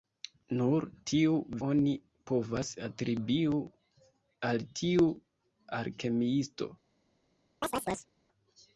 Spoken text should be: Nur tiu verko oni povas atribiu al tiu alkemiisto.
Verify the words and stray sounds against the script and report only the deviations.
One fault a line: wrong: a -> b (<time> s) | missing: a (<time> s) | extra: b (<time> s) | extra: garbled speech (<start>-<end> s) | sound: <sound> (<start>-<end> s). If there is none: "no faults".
missing: verko (1.3 s)
sound: chirp (7.6-8.1 s)